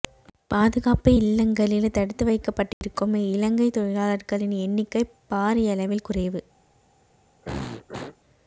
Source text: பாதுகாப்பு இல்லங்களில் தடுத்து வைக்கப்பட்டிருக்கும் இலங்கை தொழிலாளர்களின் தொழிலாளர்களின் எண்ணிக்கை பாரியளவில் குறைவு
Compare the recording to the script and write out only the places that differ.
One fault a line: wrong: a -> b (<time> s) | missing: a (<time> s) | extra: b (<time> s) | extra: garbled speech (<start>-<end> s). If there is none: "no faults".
missing: தொழிலாளர்களின் (4.5 s)